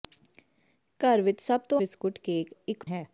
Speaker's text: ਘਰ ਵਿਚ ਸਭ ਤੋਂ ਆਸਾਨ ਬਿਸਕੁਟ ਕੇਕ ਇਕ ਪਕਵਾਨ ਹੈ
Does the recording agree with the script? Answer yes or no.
no